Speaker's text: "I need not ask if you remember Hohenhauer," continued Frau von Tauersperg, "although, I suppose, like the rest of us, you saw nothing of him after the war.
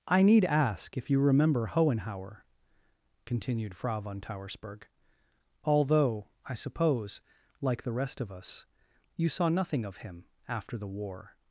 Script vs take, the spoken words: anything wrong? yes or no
yes